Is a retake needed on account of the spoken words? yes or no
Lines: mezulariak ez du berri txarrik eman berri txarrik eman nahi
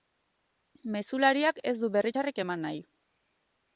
yes